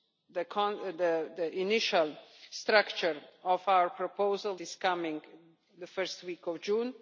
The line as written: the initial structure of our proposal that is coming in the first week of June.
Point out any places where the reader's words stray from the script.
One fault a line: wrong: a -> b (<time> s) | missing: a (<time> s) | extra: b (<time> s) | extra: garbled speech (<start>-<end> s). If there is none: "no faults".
missing: that (4.5 s)